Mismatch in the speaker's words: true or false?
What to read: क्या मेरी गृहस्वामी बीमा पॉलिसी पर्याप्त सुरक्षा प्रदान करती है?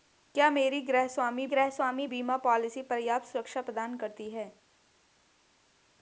true